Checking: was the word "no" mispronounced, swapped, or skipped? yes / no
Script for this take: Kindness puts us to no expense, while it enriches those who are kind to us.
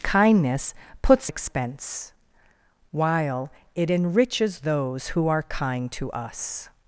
yes